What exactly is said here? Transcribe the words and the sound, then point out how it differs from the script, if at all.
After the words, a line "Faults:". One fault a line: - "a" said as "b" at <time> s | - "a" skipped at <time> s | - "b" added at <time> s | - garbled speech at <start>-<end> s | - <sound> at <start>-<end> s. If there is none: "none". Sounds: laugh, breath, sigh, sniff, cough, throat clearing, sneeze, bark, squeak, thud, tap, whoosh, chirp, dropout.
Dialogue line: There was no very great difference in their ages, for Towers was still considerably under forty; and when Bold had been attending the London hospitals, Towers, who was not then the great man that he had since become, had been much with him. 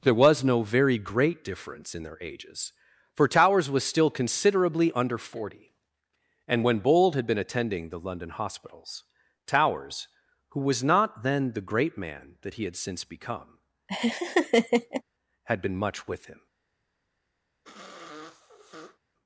There was no very great difference in their ages, for Towers was still considerably under forty; and when Bold had been attending the London hospitals, Towers, who was not then the great man that he had since become, had been much with him.
Faults:
- laugh at 13.9-15.0 s
- sniff at 17.6-19.0 s